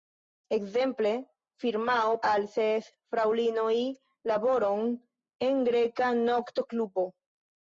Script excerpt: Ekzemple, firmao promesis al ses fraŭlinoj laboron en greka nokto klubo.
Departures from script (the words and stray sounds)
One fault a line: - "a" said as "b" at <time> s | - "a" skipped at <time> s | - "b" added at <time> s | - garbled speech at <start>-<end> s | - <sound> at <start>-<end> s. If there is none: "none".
- "promesis" skipped at 2.1 s